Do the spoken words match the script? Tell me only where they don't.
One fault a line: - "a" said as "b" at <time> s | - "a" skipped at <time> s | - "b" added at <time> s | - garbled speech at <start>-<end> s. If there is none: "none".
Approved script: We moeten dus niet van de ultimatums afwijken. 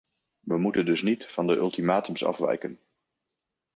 none